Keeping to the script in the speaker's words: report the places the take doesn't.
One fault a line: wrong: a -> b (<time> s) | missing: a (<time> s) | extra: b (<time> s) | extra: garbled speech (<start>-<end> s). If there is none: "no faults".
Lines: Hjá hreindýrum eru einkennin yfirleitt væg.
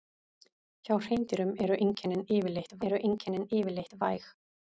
extra: eru einkennin yfirleitt (2.9 s)